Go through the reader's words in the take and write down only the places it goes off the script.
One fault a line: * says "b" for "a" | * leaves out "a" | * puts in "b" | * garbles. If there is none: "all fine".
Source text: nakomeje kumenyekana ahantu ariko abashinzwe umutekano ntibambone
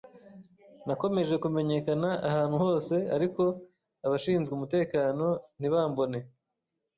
* puts in "hose"